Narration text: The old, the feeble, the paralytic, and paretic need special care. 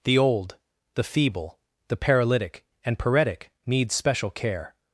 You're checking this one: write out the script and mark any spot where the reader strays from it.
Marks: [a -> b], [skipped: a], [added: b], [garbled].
The old, the feeble, the paralytic, and paretic need special care.